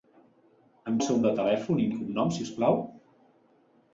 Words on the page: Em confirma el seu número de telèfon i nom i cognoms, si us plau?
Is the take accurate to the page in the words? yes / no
no